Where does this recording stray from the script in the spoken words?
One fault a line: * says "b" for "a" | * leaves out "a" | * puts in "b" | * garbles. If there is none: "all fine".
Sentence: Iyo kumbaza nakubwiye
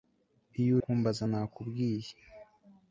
all fine